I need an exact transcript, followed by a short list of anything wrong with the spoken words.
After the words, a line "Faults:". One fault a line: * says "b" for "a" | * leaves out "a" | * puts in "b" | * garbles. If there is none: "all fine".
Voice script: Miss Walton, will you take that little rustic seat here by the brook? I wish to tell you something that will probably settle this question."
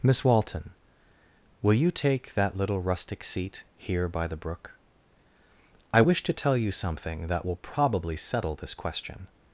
Miss Walton, will you take that little rustic seat here by the brook? I wish to tell you something that will probably settle this question."
Faults:
all fine